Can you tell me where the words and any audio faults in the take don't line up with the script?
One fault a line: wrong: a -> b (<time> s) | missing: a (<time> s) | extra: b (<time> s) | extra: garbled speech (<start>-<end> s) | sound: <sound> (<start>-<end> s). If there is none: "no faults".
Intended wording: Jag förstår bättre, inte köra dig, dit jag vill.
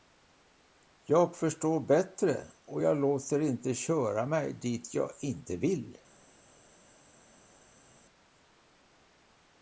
extra: och jag låter (2.6 s)
wrong: dig -> mig (4.2 s)
extra: inte (5.2 s)